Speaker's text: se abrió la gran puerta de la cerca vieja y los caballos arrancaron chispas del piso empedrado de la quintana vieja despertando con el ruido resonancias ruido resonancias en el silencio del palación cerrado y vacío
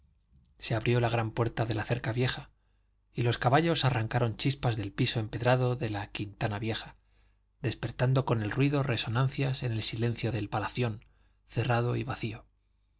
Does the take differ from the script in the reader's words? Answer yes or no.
yes